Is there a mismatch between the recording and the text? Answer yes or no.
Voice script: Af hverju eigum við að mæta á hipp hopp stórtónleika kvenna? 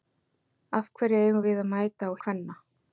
yes